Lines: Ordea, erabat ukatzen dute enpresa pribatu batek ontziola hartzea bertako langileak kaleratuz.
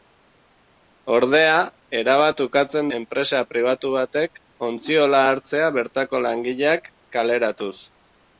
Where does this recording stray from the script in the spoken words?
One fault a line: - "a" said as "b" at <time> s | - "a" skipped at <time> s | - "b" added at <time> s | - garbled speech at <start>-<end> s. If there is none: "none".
- "dute" skipped at 2.9 s